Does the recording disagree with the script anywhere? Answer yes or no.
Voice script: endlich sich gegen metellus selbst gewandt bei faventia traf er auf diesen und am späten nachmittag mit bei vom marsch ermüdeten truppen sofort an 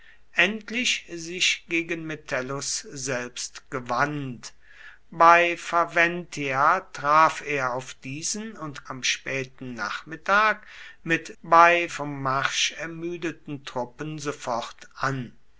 no